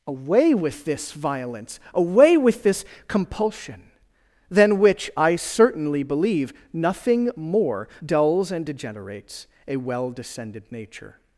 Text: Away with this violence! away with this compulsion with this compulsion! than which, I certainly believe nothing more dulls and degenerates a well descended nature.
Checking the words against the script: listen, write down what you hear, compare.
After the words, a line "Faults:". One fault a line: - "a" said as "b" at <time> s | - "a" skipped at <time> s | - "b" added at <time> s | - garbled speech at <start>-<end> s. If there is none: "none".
Away with this violence! away with this compulsion! than which, I certainly believe nothing more dulls and degenerates a well descended nature.
Faults:
- "with this compulsion" skipped at 3.9 s